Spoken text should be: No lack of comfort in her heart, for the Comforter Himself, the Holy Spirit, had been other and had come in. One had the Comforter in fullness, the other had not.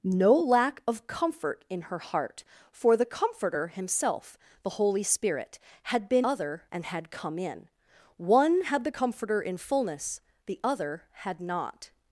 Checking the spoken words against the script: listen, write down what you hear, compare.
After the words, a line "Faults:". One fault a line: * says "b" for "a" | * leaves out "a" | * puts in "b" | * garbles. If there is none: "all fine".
No lack of comfort in her heart, for the Comforter Himself, the Holy Spirit, had been other and had come in. One had the Comforter in fullness, the other had not.
Faults:
all fine